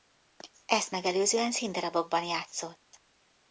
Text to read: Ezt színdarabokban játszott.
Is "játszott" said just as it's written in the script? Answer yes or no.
yes